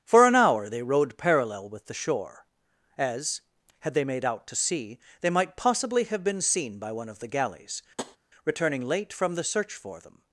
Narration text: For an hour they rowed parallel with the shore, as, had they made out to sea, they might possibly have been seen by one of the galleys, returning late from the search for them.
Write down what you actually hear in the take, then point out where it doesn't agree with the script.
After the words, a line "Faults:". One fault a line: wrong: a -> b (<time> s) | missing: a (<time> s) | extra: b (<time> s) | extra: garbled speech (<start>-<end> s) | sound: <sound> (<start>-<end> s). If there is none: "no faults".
For an hour they rowed parallel with the shore, as, had they made out to sea, they might possibly have been seen by one of the galleys, returning late from the search for them.
Faults:
sound: tap (8.0-8.2 s)